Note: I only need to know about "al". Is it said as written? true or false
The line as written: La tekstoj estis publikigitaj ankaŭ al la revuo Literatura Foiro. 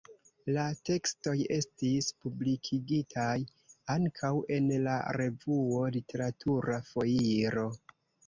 false